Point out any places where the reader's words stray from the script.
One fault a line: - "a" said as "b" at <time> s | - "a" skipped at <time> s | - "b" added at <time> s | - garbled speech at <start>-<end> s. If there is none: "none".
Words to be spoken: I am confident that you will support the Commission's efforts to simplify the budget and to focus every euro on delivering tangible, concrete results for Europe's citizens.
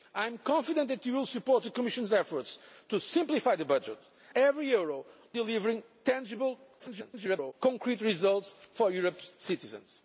- "and to focus" skipped at 4.0 s
- "on" skipped at 5.0 s
- garbled speech at 6.8-7.5 s